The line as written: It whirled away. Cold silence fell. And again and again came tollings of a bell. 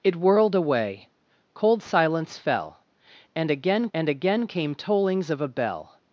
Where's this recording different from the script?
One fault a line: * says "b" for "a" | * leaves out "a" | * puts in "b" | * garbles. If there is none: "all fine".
all fine